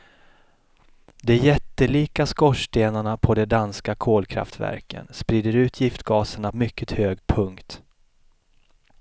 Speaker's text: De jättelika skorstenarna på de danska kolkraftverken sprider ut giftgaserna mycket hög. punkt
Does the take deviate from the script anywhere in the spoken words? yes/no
no